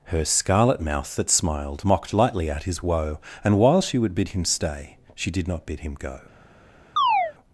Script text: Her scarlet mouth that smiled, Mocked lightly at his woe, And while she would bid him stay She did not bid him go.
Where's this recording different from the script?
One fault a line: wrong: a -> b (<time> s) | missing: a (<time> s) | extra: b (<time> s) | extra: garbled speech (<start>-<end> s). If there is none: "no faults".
no faults